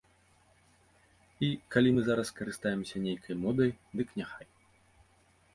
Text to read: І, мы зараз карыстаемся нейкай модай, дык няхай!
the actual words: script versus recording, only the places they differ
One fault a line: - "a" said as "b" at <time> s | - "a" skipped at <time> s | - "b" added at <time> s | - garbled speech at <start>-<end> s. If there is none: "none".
- "калі" added at 1.8 s